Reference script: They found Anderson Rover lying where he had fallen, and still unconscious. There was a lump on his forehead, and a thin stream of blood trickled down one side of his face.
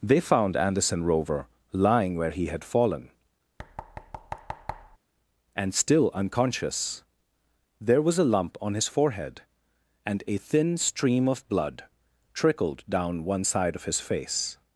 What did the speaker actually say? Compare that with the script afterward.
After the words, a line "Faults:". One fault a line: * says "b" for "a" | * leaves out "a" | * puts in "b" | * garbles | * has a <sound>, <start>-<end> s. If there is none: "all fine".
They found Anderson Rover lying where he had fallen, and still unconscious. There was a lump on his forehead, and a thin stream of blood trickled down one side of his face.
Faults:
* has a thud, 3.6-5.0 s